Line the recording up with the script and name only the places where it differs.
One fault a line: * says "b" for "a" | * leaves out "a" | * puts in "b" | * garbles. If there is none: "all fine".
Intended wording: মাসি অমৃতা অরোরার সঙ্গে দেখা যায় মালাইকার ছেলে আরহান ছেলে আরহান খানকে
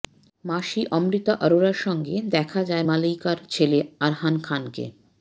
* leaves out "ছেলে আরহান"